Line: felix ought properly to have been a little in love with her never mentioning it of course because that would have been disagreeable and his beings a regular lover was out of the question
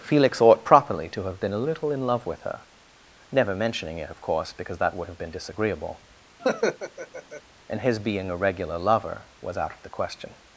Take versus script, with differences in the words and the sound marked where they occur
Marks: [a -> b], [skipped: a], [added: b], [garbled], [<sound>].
felix ought properly to have been a little in love with her never mentioning it of course because that would have been disagreeable [laugh] and his [beings -> being] a regular lover was out of the question